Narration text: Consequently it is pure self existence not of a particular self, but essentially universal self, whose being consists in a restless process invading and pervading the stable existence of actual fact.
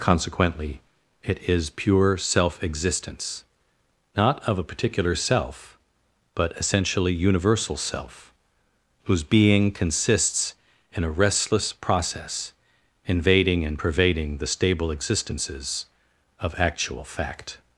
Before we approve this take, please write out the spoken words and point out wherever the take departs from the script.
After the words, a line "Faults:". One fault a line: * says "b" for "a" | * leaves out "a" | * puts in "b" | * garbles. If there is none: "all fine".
Consequently it is pure self existence not of a particular self, but essentially universal self, whose being consists in a restless process invading and pervading the stable existences of actual fact.
Faults:
* says "existences" for "existence"